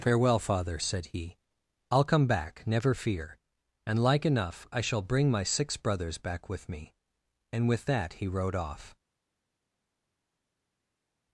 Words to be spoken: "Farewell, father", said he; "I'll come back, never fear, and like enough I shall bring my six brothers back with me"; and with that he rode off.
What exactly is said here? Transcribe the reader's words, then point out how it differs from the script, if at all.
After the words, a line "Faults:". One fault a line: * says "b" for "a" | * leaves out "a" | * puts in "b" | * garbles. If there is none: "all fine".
"Farewell, father", said he; "I'll come back, never fear, and like enough I shall bring my six brothers back with me"; and with that he rode off.
Faults:
all fine